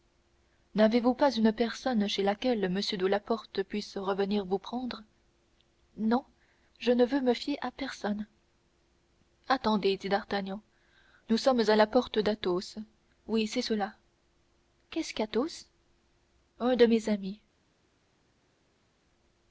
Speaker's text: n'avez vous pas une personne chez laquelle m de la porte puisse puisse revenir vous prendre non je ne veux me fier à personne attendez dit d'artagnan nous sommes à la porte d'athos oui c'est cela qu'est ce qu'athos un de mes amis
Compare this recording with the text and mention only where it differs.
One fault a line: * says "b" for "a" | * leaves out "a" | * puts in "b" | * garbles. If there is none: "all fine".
* leaves out "puisse"